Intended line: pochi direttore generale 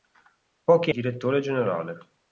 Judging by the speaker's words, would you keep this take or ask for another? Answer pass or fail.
pass